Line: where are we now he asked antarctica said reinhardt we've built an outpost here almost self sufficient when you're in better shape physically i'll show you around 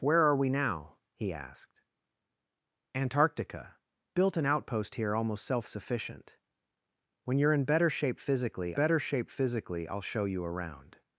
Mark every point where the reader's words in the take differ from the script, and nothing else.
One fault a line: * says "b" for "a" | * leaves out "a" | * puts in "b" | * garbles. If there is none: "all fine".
* leaves out "said reinhardt we've"
* puts in "better shape physically"